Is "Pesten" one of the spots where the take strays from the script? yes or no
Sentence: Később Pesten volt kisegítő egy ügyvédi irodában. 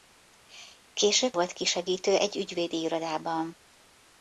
yes